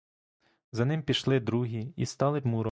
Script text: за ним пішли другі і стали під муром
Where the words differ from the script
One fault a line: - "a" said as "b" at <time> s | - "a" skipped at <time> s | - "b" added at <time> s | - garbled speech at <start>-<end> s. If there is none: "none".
- "під" skipped at 2.4 s